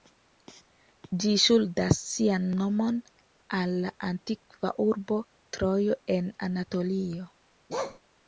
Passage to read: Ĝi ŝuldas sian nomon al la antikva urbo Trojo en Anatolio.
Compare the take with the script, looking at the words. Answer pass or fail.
pass